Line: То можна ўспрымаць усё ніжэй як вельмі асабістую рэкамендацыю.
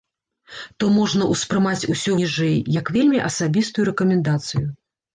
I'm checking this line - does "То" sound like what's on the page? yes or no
yes